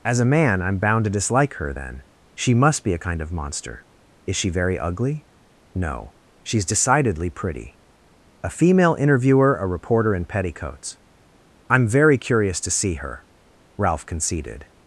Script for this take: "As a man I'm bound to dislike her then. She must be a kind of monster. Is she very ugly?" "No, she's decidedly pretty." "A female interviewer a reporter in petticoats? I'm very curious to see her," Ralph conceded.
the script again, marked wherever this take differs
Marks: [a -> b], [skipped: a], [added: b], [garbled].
"As a man I'm bound to dislike her then. She must be a kind of monster. Is she very ugly?" "No, she's decidedly pretty." "A female interviewer a reporter in petticoats? I'm very curious to see her," Ralph conceded.